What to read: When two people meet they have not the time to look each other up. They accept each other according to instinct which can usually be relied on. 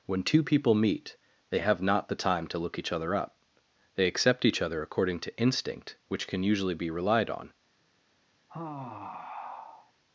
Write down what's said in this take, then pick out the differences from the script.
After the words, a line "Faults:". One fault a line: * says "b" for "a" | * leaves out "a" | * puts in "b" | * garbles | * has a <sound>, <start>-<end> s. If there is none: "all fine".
When two people meet they have not the time to look each other up. They accept each other according to instinct which can usually be relied on.
Faults:
* has a sigh, 8.5-9.9 s